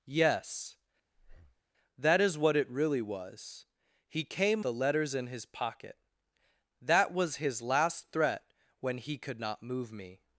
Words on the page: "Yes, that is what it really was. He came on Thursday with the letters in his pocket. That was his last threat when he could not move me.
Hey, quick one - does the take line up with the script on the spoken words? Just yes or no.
no